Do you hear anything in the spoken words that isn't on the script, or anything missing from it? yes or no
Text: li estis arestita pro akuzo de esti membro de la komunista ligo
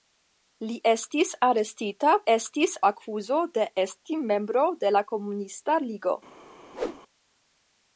yes